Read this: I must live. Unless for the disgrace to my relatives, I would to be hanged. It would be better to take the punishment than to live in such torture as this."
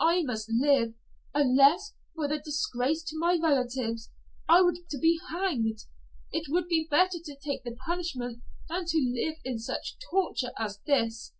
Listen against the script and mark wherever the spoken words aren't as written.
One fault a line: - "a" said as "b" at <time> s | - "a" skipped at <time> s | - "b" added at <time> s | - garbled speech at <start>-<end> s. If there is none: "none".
none